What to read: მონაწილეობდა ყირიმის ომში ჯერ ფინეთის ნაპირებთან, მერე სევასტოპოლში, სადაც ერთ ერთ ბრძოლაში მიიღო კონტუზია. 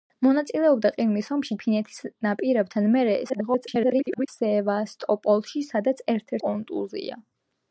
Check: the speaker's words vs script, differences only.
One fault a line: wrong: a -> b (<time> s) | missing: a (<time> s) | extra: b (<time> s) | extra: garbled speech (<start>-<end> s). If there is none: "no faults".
missing: ჯერ (1.6 s)
extra: garbled speech (3.3-4.3 s)
missing: ერთ ბრძოლაში მიიღო (6.3 s)